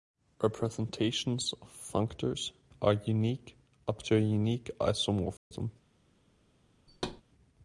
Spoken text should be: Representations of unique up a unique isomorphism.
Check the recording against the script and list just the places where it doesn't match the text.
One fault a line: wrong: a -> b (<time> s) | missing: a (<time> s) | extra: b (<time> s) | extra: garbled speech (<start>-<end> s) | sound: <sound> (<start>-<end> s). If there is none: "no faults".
extra: functors are (1.7 s)
extra: to (4.0 s)
sound: dropout (5.4-5.5 s)
sound: thud (6.9-7.2 s)